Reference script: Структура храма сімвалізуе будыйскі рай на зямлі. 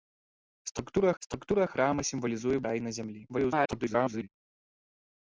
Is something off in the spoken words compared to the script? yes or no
yes